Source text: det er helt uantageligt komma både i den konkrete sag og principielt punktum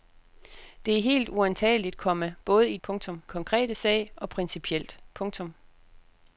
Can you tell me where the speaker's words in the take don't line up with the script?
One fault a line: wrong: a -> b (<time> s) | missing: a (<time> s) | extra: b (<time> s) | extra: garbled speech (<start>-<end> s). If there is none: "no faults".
wrong: den -> punktum (2.8 s)